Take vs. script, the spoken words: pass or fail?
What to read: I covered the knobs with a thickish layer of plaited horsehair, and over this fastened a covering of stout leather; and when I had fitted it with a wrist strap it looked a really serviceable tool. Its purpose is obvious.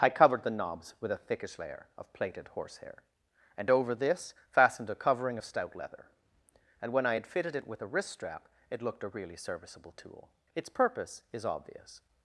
pass